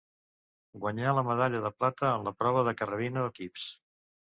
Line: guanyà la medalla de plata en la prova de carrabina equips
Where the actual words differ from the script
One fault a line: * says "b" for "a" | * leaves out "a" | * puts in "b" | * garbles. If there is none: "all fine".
all fine